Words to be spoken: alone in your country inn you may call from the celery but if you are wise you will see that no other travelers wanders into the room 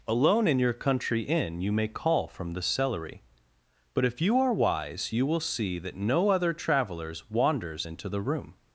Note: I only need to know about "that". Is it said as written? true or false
true